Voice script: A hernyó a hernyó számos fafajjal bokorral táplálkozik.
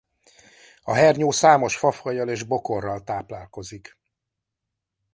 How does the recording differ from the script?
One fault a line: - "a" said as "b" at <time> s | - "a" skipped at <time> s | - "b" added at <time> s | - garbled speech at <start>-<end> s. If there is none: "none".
- "a hernyó" skipped at 1.3 s
- "és" added at 2.3 s